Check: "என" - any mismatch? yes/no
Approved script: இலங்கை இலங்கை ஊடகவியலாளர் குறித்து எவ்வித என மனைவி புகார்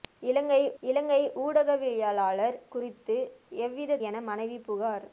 no